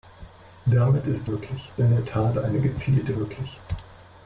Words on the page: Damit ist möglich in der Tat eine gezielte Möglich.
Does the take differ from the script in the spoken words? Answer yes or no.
no